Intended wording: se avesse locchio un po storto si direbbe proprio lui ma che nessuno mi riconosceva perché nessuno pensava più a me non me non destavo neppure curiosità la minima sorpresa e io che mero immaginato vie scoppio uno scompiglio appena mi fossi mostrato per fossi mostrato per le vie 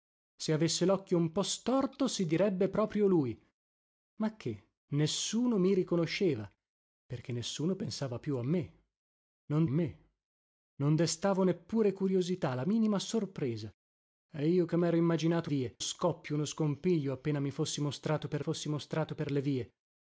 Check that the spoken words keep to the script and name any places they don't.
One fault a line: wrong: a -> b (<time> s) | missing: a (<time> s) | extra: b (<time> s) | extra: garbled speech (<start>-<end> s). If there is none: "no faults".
no faults